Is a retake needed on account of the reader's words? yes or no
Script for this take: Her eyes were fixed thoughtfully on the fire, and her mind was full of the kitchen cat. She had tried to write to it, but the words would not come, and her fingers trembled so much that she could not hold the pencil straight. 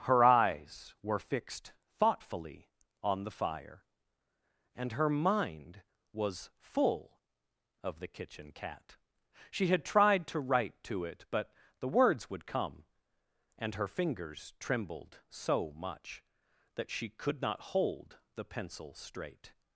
yes